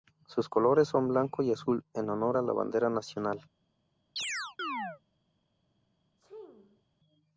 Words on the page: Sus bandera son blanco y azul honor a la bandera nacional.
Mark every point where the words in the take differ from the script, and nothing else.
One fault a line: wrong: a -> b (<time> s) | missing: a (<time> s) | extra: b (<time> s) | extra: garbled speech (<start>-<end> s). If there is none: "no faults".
wrong: bandera -> colores (0.5 s)
extra: en (1.9 s)